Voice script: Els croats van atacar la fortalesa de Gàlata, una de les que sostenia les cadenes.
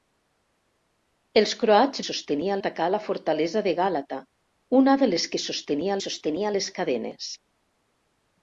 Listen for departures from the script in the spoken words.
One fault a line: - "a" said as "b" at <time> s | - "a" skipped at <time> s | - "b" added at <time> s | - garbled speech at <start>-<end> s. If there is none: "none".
- "van" said as "sostenia" at 2.1 s
- "sostenia" added at 6.1 s